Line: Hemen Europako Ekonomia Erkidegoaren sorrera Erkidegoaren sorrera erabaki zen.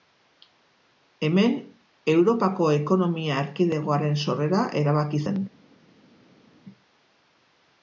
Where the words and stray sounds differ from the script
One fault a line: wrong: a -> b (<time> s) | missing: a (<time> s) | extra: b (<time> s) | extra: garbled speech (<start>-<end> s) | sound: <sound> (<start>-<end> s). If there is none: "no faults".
missing: Erkidegoaren sorrera (4.6 s)